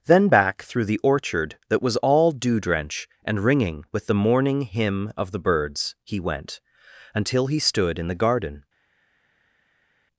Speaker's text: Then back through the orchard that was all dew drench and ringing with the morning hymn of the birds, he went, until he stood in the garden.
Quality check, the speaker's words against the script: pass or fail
pass